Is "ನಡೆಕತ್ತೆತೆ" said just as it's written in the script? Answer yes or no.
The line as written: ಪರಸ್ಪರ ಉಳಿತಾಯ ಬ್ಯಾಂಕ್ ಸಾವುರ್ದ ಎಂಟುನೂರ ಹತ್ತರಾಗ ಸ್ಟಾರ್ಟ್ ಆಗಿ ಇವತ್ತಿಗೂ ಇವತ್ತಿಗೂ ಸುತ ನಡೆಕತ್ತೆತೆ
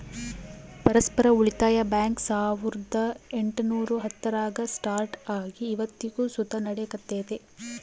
yes